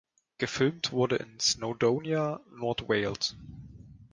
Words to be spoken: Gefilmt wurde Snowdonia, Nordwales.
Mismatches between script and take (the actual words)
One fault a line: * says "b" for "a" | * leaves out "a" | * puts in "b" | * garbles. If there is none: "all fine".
* puts in "in"